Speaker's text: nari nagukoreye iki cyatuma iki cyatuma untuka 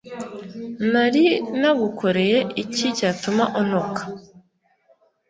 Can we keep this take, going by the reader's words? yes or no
no